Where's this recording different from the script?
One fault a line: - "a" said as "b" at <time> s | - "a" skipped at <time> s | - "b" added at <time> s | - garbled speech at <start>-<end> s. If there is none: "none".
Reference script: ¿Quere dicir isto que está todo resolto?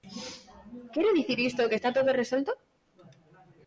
none